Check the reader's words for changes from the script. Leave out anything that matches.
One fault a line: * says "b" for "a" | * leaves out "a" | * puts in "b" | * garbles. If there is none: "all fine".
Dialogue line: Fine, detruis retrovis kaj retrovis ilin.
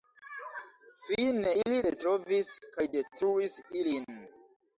* says "ili" for "detruis"
* says "detruis" for "retrovis"